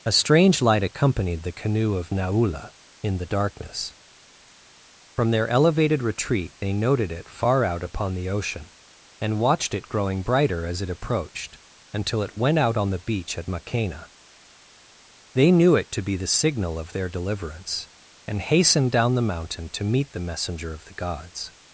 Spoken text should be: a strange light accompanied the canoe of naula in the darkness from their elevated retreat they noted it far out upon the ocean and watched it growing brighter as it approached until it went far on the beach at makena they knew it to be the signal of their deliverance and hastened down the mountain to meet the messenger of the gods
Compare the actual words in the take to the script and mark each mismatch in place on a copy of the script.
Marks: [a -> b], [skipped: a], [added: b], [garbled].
a strange light accompanied the canoe of naula in the darkness from their elevated retreat they noted it far out upon the ocean and watched it growing brighter as it approached until it went [far -> out] on the beach at makena they knew it to be the signal of their deliverance and hastened down the mountain to meet the messenger of the gods